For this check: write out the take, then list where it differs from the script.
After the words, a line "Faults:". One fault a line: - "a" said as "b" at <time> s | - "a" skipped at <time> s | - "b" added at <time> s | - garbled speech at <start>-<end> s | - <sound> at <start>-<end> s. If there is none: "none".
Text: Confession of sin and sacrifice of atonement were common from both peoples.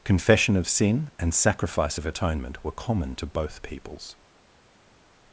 Confession of sin and sacrifice of atonement were common to both peoples.
Faults:
- "from" said as "to" at 3.2 s